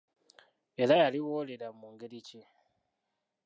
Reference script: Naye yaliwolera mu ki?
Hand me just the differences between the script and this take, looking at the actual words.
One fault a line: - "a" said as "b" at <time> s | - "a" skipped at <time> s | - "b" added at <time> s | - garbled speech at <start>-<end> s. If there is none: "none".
- "Naye" said as "Era" at 0.8 s
- "ngeri" added at 1.9 s